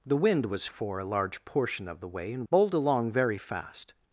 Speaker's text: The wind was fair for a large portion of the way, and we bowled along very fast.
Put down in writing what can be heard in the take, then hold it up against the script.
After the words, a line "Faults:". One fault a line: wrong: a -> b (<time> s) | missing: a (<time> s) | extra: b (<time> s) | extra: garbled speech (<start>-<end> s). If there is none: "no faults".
The wind was for a large portion of the way, and bowled along very fast.
Faults:
missing: fair (0.7 s)
missing: we (2.5 s)